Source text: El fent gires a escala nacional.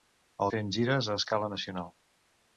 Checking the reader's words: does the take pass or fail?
pass